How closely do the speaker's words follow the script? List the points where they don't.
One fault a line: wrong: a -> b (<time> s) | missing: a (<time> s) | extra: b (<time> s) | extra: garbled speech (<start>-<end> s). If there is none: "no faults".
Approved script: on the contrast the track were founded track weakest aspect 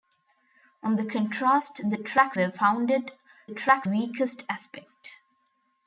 no faults